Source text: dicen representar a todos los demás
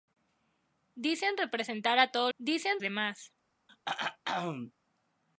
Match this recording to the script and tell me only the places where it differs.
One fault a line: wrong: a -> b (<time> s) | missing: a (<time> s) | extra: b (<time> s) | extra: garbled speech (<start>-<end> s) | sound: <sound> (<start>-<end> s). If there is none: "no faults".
wrong: los -> dicen (2.4 s)
sound: throat clearing (3.7-4.7 s)